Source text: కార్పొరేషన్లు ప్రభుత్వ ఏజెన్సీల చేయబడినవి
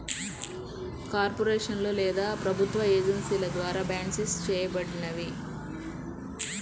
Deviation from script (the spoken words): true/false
true